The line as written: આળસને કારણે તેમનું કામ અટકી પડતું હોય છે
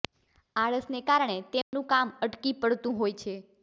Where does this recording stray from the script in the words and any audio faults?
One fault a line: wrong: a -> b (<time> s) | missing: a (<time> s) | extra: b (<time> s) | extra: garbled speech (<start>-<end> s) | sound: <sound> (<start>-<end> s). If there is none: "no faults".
sound: dropout (1.6-1.7 s)